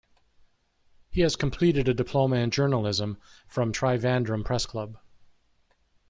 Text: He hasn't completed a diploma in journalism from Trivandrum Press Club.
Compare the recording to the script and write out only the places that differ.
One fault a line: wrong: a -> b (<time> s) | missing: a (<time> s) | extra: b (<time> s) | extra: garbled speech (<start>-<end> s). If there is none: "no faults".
wrong: hasn't -> has (1.2 s)